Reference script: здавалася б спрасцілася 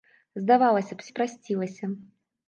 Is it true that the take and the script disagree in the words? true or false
false